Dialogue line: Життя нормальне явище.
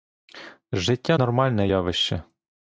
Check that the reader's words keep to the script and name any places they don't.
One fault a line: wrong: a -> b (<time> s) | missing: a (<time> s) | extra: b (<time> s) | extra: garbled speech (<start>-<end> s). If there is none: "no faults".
no faults